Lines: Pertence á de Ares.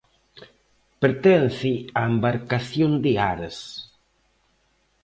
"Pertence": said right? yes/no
yes